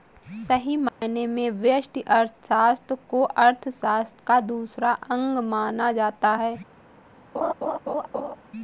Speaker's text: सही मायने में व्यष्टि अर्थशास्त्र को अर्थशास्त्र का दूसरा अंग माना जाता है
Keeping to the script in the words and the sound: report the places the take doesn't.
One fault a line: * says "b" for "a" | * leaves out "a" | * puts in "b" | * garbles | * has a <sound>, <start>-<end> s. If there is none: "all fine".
* has a dropout, 0.9-1.0 s
* has a laugh, 7.3-8.4 s